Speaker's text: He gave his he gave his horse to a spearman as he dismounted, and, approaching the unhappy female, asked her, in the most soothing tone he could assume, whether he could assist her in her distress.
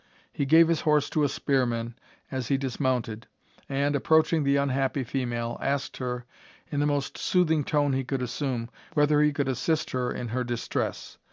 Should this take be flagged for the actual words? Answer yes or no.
yes